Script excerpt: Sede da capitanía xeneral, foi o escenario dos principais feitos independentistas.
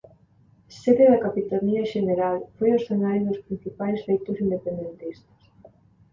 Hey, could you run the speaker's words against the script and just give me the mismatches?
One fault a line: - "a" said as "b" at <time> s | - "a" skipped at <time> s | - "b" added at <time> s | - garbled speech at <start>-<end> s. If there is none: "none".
none